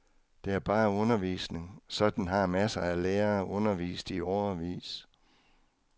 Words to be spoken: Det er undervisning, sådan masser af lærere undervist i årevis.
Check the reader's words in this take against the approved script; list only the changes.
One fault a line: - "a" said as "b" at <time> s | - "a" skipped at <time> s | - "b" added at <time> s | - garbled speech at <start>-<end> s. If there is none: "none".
- "bare" added at 0.6 s
- "har" added at 2.3 s